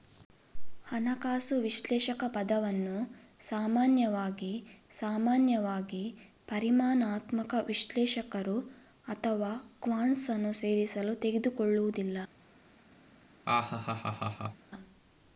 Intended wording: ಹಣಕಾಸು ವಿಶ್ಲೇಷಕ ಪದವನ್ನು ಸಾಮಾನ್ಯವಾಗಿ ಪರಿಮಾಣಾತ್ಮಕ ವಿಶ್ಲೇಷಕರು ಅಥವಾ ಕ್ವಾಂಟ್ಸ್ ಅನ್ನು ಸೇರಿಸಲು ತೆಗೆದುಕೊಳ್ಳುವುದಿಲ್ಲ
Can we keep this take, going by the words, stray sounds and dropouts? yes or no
no